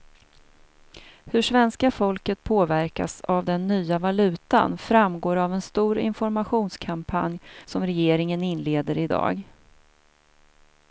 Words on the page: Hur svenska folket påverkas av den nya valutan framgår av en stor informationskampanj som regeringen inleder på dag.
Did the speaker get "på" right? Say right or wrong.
wrong